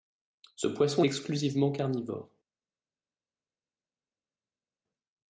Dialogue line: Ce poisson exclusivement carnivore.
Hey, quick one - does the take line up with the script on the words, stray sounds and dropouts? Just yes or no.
yes